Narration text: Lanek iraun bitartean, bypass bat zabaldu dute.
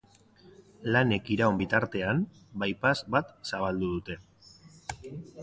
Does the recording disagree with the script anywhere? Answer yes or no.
no